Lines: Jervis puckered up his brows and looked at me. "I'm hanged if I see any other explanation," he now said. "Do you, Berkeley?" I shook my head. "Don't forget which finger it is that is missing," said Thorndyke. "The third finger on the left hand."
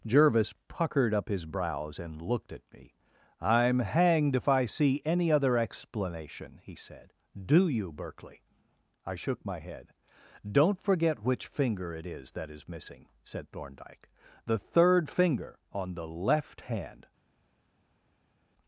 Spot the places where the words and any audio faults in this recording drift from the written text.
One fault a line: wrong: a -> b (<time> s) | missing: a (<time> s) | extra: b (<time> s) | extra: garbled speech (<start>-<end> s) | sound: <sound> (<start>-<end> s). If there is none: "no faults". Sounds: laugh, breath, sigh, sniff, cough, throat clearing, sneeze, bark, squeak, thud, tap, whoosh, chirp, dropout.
missing: now (6.8 s)